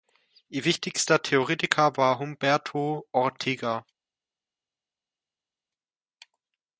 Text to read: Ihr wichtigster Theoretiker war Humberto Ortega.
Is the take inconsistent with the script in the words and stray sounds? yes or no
no